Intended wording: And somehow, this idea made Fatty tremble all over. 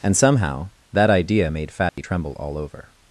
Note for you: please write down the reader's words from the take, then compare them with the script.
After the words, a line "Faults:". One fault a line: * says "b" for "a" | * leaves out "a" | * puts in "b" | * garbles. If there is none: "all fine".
And somehow, that idea made Fatty tremble all over.
Faults:
* says "that" for "this"